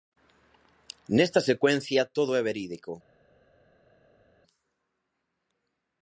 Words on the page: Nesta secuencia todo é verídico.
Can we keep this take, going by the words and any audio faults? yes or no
yes